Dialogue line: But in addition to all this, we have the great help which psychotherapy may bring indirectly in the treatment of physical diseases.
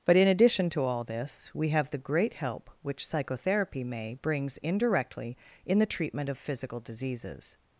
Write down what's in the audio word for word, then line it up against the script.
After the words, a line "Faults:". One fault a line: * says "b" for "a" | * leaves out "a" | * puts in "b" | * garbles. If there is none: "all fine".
But in addition to all this, we have the great help which psychotherapy may brings indirectly in the treatment of physical diseases.
Faults:
* says "brings" for "bring"